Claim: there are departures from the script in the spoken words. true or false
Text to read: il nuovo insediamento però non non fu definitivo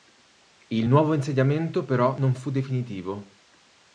true